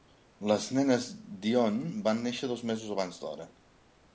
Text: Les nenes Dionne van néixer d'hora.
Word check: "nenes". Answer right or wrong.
right